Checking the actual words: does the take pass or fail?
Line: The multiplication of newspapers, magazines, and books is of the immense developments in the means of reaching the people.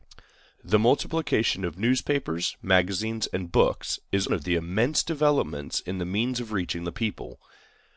pass